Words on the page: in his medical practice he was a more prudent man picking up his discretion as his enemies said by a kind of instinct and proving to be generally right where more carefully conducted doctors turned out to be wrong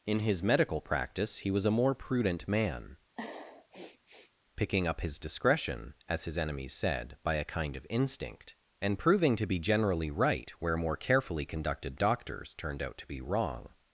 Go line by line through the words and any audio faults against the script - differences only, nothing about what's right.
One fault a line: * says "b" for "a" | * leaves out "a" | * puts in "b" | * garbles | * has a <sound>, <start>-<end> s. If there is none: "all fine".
* has a sniff, 3.2-4.3 s